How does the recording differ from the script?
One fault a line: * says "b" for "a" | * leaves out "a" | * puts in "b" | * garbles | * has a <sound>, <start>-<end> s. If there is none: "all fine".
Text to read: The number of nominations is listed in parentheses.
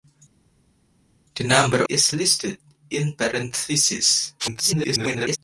* leaves out "of nominations"
* garbles